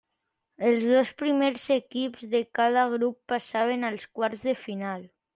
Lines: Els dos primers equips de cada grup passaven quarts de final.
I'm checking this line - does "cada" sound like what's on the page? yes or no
yes